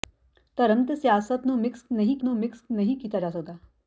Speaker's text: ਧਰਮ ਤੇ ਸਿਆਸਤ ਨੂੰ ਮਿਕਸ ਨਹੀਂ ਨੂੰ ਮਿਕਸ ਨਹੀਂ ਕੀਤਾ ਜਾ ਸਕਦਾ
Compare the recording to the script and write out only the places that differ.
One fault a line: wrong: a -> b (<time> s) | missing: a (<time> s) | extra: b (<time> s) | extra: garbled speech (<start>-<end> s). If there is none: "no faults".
no faults